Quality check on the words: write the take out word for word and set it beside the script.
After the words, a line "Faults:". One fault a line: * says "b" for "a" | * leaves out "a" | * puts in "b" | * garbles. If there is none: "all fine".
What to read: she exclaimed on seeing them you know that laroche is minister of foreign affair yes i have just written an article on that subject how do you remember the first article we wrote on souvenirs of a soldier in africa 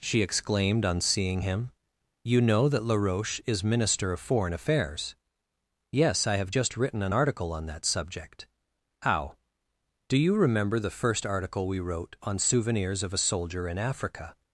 she exclaimed on seeing him you know that laroche is minister of foreign affairs yes i have just written an article on that subject how do you remember the first article we wrote on souvenirs of a soldier in africa
Faults:
* says "him" for "them"
* says "affairs" for "affair"